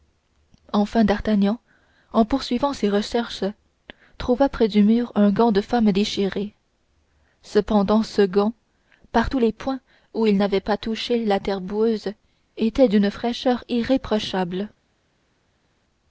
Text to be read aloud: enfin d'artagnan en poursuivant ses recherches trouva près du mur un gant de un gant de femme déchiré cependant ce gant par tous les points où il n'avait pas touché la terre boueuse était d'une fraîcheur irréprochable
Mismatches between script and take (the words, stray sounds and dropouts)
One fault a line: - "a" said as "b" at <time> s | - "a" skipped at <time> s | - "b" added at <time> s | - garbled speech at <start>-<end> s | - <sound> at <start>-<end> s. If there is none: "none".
- "un gant de" skipped at 5.6 s